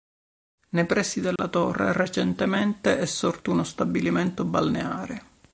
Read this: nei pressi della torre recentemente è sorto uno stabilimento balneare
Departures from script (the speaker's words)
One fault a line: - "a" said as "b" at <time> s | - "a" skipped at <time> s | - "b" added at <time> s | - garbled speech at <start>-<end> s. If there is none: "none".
none